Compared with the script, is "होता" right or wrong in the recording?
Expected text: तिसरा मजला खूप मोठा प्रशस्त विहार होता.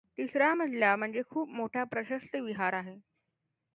wrong